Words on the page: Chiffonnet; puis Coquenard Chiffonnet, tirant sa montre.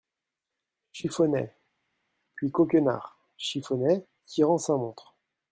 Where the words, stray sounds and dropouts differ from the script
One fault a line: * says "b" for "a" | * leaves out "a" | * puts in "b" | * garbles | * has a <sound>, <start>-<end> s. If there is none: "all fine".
all fine